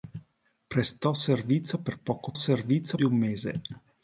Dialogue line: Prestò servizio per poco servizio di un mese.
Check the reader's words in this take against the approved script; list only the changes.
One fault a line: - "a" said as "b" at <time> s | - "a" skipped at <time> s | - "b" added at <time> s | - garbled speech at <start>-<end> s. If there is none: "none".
none